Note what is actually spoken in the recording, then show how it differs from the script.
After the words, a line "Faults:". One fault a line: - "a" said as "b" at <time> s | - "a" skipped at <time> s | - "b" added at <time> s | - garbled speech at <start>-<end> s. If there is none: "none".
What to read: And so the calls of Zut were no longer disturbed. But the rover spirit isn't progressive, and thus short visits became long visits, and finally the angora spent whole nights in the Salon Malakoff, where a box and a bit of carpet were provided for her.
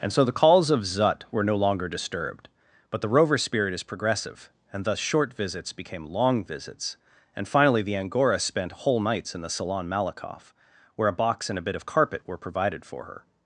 And so the calls of Zut were no longer disturbed. But the rover spirit is progressive, and thus short visits became long visits, and finally the angora spent whole nights in the Salon Malakoff, where a box and a bit of carpet were provided for her.
Faults:
- "isn't" said as "is" at 3.7 s